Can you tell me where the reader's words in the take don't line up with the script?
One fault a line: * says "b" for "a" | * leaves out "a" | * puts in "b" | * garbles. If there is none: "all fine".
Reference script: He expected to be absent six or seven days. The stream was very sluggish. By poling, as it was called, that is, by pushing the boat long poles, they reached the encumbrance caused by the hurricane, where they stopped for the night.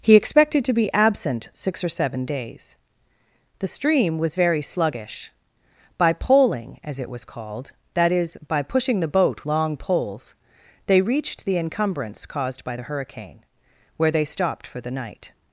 all fine